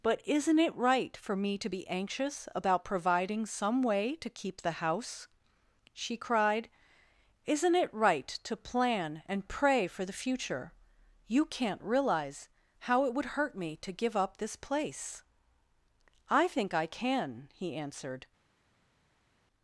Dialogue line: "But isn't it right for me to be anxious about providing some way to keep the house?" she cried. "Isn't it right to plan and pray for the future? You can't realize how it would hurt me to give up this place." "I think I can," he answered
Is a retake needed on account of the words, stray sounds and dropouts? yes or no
no